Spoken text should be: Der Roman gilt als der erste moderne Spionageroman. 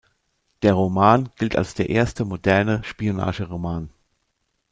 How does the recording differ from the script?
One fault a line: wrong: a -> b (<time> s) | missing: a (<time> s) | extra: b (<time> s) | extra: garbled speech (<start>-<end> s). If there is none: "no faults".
no faults